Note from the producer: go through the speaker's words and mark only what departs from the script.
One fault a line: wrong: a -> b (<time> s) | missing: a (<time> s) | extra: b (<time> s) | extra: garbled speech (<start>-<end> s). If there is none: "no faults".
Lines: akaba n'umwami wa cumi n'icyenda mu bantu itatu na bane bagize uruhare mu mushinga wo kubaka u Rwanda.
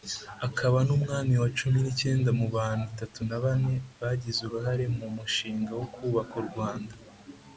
no faults